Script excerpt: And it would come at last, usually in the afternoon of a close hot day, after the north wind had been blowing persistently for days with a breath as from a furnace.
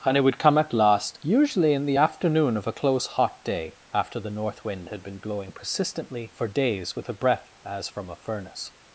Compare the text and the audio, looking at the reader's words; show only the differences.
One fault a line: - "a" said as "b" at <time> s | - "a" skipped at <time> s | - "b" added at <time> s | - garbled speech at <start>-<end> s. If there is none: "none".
none